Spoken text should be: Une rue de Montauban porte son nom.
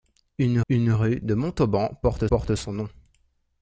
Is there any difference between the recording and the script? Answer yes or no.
yes